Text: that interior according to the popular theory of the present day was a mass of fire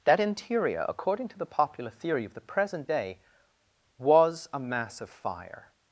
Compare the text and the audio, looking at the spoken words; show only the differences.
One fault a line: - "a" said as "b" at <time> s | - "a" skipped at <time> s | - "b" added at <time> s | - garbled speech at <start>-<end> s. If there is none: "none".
none